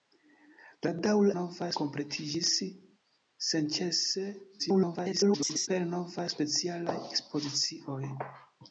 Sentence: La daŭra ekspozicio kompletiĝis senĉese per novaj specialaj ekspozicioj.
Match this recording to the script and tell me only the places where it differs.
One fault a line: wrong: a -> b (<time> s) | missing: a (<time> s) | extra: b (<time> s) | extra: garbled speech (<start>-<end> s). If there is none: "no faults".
wrong: ekspozicio -> novaj (1.4 s)
extra: garbled speech (4.6-5.7 s)